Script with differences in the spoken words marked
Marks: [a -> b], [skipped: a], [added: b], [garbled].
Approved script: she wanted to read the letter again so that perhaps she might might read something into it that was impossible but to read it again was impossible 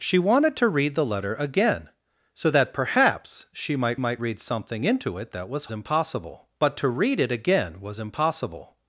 she wanted to read the letter again so that perhaps she might might read something into it that was impossible but to read it again was impossible